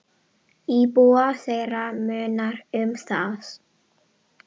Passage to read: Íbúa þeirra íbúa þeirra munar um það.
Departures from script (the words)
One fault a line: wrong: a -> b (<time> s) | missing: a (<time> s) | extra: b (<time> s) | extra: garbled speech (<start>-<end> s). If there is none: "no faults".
missing: íbúa þeirra (1.8 s)